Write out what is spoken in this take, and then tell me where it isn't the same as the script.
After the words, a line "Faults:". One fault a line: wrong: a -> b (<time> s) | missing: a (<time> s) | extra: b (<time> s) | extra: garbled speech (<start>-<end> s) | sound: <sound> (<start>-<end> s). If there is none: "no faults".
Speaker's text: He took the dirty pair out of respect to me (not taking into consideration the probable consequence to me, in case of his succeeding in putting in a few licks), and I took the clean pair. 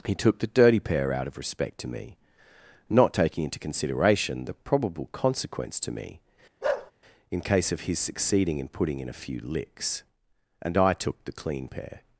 He took the dirty pair out of respect to me (not taking into consideration the probable consequence to me, in case of his succeeding in putting in a few licks), and I took the clean pair.
Faults:
sound: bark (6.6-6.9 s)